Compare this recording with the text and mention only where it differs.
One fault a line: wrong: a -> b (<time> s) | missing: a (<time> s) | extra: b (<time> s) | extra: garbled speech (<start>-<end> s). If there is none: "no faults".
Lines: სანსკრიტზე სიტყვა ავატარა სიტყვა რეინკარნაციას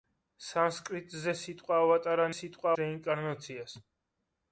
no faults